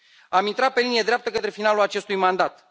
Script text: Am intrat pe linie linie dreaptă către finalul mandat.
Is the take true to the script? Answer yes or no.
no